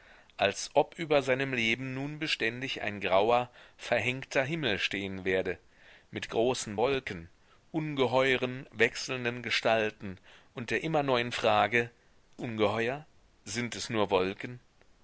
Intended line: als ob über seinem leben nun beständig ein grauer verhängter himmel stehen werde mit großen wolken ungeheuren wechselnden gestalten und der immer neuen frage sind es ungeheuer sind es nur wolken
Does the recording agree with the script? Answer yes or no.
no